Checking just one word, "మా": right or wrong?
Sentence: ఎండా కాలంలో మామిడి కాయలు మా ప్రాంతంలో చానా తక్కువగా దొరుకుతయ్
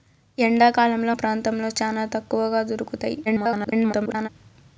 wrong